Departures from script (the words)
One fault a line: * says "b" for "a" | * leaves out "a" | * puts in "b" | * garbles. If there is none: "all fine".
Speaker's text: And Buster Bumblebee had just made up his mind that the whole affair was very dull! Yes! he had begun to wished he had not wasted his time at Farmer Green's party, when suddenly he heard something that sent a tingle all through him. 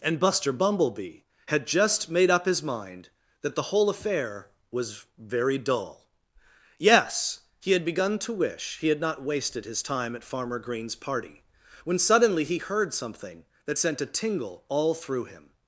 * says "wish" for "wished"